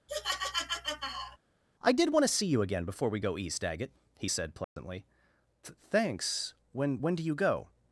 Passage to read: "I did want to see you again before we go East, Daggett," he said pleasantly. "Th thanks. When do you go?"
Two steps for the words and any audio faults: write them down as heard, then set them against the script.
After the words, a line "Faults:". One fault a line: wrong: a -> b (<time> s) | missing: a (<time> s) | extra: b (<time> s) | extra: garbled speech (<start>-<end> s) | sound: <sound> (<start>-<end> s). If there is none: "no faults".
"I did want to see you again before we go East, Daggett," he said pleasantly. "Th thanks. When When do you go?"
Faults:
sound: laugh (0.1-1.4 s)
sound: dropout (4.6-4.8 s)
extra: When (7.0 s)